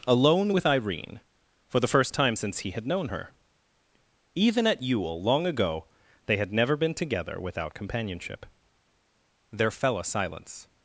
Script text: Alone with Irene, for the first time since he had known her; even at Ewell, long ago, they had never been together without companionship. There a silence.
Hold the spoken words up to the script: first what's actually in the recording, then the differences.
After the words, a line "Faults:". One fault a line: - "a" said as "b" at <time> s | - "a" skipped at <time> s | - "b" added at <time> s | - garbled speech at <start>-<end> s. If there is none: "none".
Alone with Irene, for the first time since he had known her; even at Ewell, long ago, they had never been together without companionship. There fell a silence.
Faults:
- "fell" added at 9.7 s